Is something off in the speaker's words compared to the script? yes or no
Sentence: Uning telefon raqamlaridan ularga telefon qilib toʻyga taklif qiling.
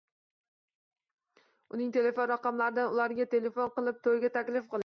no